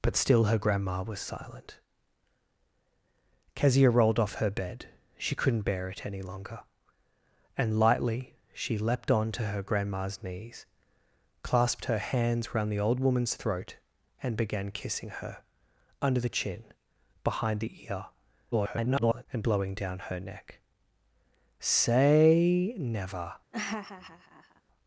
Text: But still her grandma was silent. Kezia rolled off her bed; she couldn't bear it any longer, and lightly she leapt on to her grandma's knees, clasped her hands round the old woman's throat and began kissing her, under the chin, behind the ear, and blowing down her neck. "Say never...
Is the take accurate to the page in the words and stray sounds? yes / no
no